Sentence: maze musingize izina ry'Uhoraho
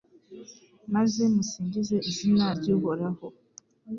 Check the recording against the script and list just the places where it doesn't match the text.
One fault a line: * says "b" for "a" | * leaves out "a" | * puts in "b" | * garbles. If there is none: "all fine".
all fine